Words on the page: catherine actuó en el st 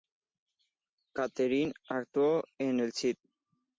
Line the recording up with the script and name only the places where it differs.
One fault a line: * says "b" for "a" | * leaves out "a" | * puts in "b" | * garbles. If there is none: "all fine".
all fine